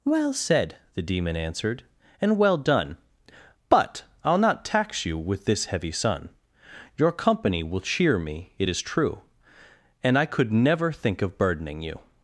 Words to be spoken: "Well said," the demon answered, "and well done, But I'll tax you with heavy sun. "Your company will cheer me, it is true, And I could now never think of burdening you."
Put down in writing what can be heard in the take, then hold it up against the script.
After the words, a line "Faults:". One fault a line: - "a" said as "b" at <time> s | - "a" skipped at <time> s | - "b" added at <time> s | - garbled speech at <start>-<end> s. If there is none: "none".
"Well said," the demon answered, "and well done, But I'll not tax you with this heavy sun. "Your company will cheer me, it is true, And I could never think of burdening you."
Faults:
- "not" added at 4.4 s
- "this" added at 5.5 s
- "now" skipped at 10.5 s